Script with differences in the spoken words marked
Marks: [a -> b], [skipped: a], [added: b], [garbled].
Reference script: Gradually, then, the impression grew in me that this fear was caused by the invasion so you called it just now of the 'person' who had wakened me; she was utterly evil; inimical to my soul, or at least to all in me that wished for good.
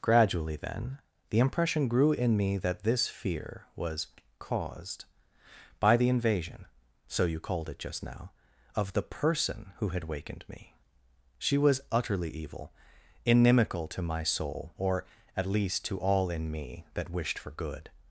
Gradually, then, the impression grew in me that this fear was caused by the invasion so you called it just now of the 'person' who had wakened me; she was utterly evil; inimical to my soul, or at least to all in me that wished for good.